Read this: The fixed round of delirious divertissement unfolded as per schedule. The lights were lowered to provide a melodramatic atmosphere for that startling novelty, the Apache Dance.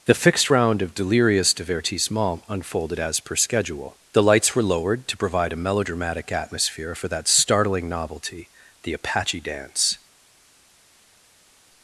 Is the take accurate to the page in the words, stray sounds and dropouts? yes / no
yes